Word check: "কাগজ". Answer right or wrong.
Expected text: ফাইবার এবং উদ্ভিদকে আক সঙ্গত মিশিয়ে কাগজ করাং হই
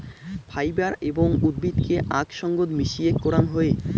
wrong